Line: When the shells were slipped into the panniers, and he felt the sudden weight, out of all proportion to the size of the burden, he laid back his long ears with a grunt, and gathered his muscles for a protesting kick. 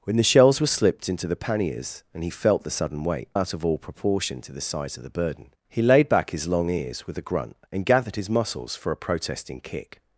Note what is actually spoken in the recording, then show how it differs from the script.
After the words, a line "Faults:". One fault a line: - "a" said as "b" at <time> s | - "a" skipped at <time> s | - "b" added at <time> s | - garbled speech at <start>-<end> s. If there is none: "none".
When the shells were slipped into the panniers, and he felt the sudden weight, out of all proportion to the size of the burden, he laid back his long ears with a grunt, and gathered his muscles for a protesting kick.
Faults:
none